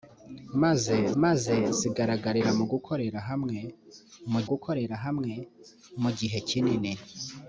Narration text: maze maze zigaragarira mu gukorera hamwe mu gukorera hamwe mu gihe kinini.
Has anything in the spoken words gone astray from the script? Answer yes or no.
no